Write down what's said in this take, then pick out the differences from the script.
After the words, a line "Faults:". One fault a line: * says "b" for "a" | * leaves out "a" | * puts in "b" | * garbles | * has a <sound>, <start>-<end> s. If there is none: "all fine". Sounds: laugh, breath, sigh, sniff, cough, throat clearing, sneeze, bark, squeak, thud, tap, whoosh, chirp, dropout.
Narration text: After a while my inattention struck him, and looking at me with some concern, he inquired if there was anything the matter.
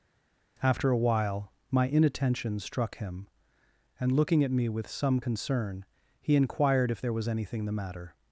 After a while my inattention struck him, and looking at me with some concern, he inquired if there was anything the matter.
Faults:
all fine